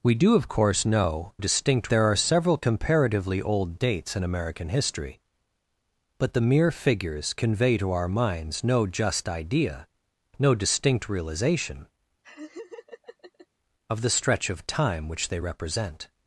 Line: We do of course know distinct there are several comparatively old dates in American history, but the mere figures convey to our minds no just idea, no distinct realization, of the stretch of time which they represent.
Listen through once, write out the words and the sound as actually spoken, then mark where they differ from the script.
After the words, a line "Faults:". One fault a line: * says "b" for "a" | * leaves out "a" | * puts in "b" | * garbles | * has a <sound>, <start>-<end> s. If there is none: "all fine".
We do of course know distinct there are several comparatively old dates in American history, but the mere figures convey to our minds no just idea, no distinct realization, of the stretch of time which they represent.
Faults:
* has a laugh, 12.2-13.5 s